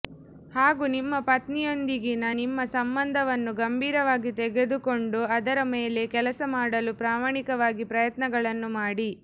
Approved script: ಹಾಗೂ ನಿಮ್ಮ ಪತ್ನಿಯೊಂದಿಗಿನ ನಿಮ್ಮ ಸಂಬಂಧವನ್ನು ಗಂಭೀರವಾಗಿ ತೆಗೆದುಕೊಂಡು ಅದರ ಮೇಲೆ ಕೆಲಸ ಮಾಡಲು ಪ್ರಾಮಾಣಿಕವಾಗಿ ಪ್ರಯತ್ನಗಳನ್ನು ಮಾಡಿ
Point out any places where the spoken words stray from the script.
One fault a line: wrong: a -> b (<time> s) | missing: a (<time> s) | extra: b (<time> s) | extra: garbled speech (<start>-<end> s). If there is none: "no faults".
no faults